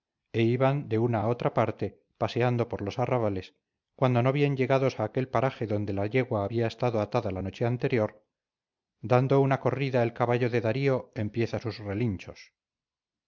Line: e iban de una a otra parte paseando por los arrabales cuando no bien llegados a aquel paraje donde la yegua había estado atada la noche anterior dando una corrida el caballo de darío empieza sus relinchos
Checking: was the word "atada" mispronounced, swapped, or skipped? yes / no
no